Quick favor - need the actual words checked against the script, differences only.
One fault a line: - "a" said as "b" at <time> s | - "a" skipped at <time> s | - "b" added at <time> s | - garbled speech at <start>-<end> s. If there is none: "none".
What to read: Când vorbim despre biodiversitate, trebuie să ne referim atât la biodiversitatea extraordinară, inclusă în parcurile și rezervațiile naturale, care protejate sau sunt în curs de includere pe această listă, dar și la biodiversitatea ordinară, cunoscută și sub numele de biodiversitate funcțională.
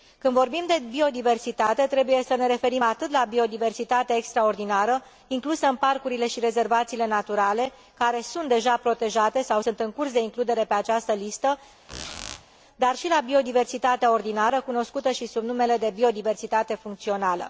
- "despre" said as "de" at 0.7 s
- "sunt deja" added at 8.2 s